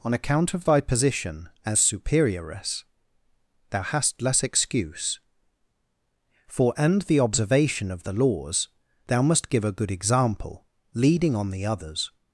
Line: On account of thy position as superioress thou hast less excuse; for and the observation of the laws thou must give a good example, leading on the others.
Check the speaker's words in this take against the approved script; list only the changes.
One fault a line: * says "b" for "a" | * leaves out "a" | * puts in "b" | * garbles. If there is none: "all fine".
all fine